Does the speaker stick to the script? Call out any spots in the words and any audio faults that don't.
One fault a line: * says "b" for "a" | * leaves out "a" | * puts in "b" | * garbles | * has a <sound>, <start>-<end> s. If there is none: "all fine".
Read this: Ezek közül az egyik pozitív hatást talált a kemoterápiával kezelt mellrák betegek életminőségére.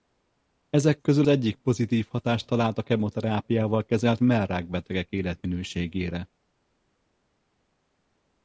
* leaves out "az"